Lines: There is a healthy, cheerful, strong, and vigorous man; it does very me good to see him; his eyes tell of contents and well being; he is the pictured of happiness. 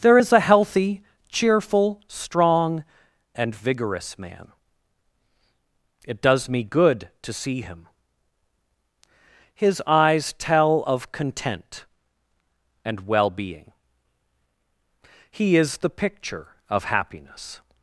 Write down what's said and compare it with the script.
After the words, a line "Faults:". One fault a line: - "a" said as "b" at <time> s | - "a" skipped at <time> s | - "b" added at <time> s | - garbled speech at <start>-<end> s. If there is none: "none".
There is a healthy, cheerful, strong, and vigorous man; it does me good to see him; his eyes tell of content and well being; he is the picture of happiness.
Faults:
- "very" skipped at 6.5 s
- "contents" said as "content" at 11.1 s
- "pictured" said as "picture" at 16.0 s